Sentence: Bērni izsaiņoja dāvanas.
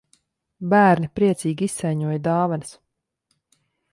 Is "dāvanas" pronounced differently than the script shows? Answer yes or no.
no